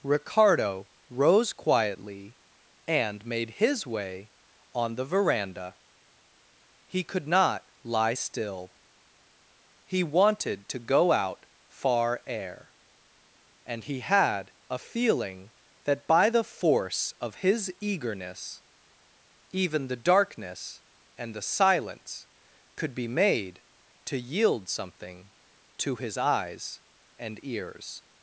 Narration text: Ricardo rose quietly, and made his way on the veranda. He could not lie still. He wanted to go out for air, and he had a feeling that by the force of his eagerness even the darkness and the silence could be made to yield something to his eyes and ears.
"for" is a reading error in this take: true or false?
true